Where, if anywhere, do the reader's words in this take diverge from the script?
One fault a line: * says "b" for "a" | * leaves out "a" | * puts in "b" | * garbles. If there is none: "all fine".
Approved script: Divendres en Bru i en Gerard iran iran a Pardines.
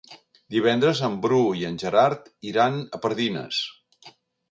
* leaves out "iran"